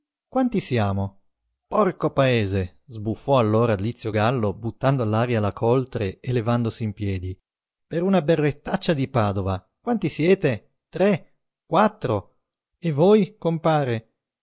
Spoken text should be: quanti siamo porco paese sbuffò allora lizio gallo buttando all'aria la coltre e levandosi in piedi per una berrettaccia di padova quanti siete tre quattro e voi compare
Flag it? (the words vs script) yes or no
no